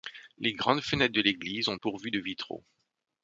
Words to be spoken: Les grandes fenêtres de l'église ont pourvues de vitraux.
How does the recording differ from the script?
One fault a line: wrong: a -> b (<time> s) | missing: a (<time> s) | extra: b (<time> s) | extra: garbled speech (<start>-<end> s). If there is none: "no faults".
no faults